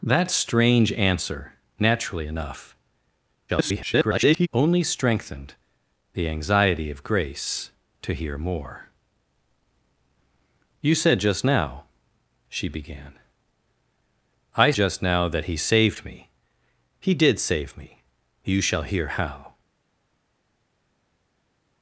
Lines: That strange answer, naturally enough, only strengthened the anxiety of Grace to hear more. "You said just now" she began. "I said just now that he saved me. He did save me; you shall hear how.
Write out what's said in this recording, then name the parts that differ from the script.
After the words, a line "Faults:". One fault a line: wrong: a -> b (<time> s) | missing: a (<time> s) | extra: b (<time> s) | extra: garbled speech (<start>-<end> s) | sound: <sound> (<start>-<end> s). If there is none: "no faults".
That strange answer, naturally enough, [garbled] only strengthened the anxiety of Grace to hear more. "You said just now" she began. "I just now that he saved me. He did save me; you shall hear how.
Faults:
extra: garbled speech (3.5-4.5 s)
missing: said (14.7 s)